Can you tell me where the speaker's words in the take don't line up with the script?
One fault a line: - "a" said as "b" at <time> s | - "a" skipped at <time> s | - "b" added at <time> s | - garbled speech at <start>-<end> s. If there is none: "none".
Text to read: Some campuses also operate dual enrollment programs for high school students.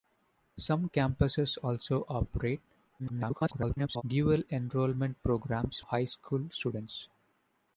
- garbled speech at 3.0-4.0 s
- "for" skipped at 5.8 s